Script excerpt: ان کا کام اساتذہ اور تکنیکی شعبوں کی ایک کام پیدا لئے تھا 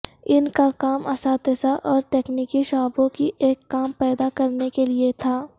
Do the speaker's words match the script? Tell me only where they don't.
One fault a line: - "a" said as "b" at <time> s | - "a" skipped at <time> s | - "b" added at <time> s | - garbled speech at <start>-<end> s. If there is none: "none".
- "کرنے کے" added at 4.3 s